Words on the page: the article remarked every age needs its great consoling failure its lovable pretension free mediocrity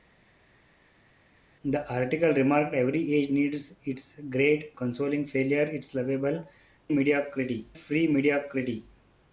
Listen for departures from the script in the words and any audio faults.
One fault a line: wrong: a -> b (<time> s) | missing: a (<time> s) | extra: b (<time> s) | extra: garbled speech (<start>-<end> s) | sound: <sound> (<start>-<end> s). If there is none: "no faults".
wrong: pretension -> mediocrity (6.9 s)